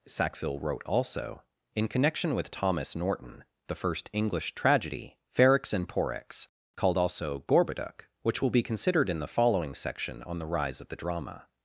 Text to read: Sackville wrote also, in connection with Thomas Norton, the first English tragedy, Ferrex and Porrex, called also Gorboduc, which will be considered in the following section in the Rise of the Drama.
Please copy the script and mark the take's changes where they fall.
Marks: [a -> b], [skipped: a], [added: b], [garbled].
Sackville wrote also, in connection with Thomas Norton, the first English tragedy, Ferrex and Porrex, called also Gorboduc, which will be considered in the following section [in -> on] the Rise of the Drama.